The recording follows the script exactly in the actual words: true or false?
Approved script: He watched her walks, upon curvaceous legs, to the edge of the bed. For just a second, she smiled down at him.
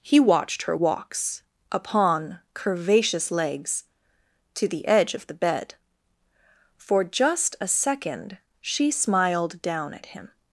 true